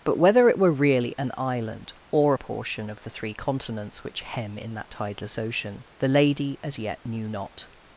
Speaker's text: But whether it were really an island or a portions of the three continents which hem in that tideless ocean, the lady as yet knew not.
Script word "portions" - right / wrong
wrong